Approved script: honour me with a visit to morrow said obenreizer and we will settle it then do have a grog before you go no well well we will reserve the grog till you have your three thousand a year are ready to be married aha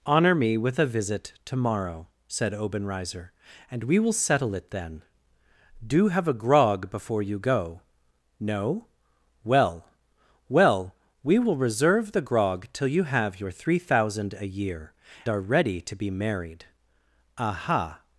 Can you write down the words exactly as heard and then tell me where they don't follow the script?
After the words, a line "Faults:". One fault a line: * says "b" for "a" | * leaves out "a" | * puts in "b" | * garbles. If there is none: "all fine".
honour me with a visit to morrow said obenreizer and we will settle it then do have a grog before you go no well well we will reserve the grog till you have your three thousand a year are ready to be married aha
Faults:
all fine